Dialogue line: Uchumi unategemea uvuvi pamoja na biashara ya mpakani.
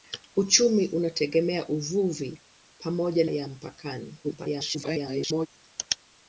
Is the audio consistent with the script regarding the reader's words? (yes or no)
no